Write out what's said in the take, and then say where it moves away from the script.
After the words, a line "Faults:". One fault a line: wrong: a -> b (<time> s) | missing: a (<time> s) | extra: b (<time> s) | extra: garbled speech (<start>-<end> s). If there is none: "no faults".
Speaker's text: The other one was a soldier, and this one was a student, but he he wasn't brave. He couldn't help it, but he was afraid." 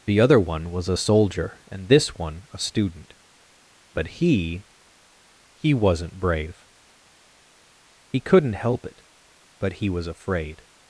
The other one was a soldier, and this one a student, but he he wasn't brave. He couldn't help it, but he was afraid."
Faults:
missing: was (2.5 s)